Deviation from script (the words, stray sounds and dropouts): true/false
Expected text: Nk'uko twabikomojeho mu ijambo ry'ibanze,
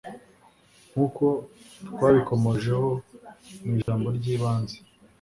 true